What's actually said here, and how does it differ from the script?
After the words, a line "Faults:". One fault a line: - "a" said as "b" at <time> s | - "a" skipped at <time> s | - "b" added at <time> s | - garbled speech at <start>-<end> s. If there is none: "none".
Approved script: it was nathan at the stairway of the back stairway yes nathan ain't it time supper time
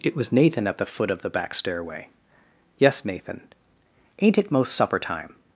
it was nathan at the foot of the back stairway yes nathan ain't it most supper time
Faults:
- "stairway" said as "foot" at 0.9 s
- "time" said as "most" at 4.5 s